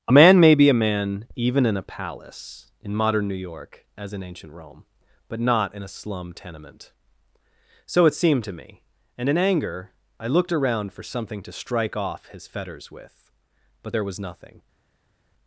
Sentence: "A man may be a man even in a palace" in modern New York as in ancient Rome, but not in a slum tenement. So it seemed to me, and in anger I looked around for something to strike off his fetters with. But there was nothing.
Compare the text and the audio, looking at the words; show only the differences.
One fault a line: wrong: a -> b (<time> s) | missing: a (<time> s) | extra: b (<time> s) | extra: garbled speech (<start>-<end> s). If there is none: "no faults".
no faults